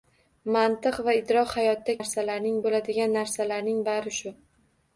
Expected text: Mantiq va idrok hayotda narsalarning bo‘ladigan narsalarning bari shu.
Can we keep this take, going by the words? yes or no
yes